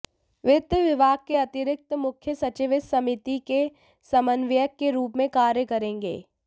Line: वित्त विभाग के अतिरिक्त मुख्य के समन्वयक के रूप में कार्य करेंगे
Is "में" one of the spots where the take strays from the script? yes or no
no